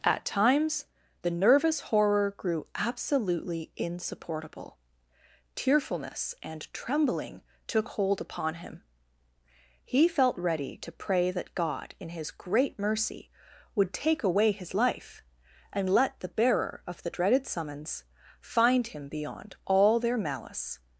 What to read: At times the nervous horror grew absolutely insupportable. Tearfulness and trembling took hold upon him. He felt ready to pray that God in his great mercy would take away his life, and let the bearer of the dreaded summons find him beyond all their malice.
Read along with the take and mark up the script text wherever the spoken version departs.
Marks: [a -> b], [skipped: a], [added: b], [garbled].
At times the nervous horror grew absolutely insupportable. Tearfulness and trembling took hold upon him. He felt ready to pray that God in his great mercy would take away his life, and let the bearer of the dreaded summons find him beyond all their malice.